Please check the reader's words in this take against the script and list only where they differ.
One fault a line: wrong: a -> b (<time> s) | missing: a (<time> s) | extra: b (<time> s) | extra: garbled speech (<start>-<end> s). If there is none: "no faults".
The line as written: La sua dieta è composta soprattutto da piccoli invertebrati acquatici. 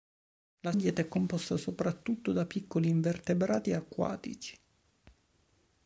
missing: sua (0.7 s)